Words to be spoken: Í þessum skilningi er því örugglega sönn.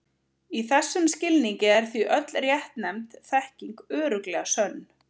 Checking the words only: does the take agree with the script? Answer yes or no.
no